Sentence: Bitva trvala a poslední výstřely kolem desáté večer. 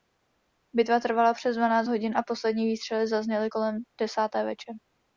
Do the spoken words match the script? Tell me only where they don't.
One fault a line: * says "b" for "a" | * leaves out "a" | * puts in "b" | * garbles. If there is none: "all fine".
* puts in "přes dvanáct hodin"
* puts in "zazněly"